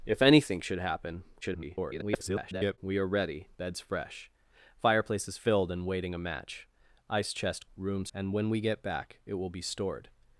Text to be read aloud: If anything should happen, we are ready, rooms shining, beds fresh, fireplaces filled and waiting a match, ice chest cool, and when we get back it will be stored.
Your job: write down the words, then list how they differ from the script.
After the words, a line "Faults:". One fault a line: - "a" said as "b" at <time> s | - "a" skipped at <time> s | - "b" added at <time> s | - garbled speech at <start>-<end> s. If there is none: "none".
If anything should happen, [garbled] we are ready, beds fresh, fireplaces filled and waiting a match, ice chest rooms, and when we get back it will be stored.
Faults:
- garbled speech at 1.4-2.8 s
- "rooms shining" skipped at 3.5 s
- "cool" said as "rooms" at 7.7 s